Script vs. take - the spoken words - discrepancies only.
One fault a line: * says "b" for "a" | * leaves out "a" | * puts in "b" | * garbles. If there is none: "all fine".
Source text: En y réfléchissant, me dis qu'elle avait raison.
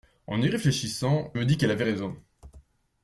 all fine